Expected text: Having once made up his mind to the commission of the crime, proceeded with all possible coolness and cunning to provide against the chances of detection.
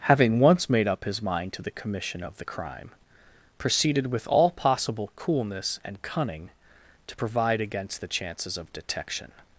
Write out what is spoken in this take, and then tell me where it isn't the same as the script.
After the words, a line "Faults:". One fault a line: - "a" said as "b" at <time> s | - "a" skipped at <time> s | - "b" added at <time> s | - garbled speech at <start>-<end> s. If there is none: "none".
Having once made up his mind to the commission of the crime, proceeded with all possible coolness and cunning to provide against the chances of detection.
Faults:
none